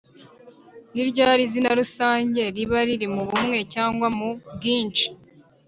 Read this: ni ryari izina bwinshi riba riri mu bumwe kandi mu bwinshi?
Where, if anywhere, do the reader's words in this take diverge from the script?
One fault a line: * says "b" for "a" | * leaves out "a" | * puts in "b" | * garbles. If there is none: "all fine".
* says "rusange" for "bwinshi"
* says "cyangwa" for "kandi"